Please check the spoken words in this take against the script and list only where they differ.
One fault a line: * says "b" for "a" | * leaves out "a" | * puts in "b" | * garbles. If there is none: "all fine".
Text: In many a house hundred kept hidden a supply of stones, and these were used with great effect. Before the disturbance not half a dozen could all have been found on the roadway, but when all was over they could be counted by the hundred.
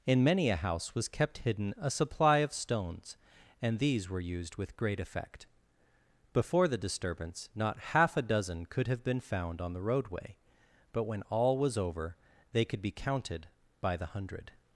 * says "was" for "hundred"
* leaves out "all"